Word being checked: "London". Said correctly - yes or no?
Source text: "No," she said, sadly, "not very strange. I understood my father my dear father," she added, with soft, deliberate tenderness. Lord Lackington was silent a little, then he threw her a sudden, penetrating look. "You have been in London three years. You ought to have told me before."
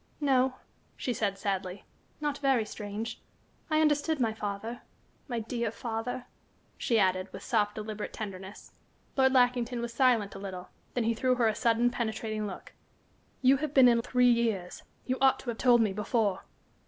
no